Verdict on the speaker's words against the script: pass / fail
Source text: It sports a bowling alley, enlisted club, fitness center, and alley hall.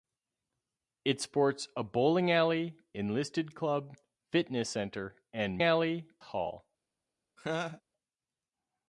pass